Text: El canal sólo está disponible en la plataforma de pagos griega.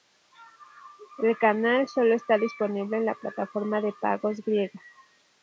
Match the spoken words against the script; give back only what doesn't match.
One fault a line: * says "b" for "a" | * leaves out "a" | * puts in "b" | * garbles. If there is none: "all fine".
all fine